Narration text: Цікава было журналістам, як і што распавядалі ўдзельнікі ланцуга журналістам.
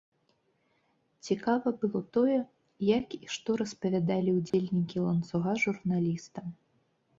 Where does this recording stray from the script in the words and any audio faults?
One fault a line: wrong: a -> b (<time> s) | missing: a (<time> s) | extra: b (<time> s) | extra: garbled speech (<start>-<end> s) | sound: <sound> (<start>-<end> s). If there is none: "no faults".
wrong: журналістам -> тое (2.2 s)
sound: dropout (4.5-4.5 s)